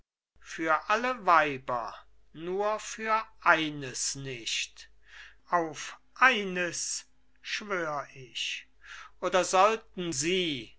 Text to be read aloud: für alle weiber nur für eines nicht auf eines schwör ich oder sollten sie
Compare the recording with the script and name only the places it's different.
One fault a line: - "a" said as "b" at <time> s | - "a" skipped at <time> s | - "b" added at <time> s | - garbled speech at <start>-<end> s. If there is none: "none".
none